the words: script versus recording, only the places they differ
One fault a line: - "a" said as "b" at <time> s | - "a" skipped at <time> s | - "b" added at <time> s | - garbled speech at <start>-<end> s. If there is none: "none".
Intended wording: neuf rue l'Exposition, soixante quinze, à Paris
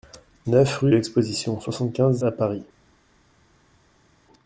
none